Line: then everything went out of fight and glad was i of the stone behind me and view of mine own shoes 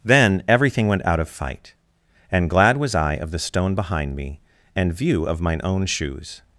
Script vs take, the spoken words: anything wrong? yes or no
no